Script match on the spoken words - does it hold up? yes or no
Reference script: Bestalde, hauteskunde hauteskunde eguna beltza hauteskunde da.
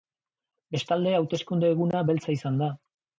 no